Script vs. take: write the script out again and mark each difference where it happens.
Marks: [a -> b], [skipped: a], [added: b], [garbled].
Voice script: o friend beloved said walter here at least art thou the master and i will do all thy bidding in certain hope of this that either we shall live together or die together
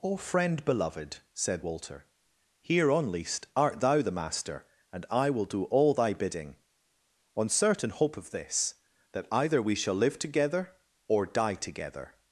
o friend beloved said walter here [at -> on] least art thou the master and i will do all thy bidding [in -> on] certain hope of this that either we shall live together or die together